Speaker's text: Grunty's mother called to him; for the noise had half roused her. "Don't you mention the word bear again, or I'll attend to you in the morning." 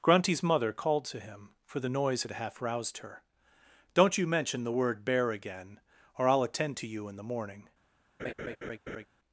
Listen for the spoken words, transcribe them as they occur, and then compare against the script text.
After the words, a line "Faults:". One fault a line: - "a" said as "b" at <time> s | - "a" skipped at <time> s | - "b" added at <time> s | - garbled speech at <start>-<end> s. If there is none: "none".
Grunty's mother called to him; for the noise had half roused her. "Don't you mention the word bear again, or I'll attend to you in the morning."
Faults:
none